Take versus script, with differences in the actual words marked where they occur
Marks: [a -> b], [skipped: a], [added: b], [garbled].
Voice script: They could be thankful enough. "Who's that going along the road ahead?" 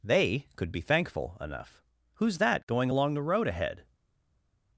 They could be thankful enough. "Who's that going along the road ahead?"